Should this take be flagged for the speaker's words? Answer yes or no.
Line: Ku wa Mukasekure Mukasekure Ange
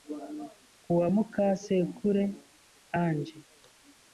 yes